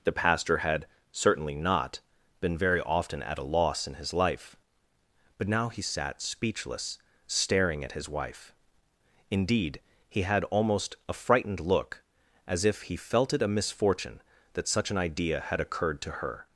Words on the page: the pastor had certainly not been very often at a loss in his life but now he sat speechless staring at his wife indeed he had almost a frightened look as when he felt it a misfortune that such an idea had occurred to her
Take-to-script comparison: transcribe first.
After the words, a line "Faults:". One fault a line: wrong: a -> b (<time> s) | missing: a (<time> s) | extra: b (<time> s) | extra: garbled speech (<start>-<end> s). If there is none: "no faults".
the pastor had certainly not been very often at a loss in his life but now he sat speechless staring at his wife indeed he had almost a frightened look as if he felt it a misfortune that such an idea had occurred to her
Faults:
wrong: when -> if (12.7 s)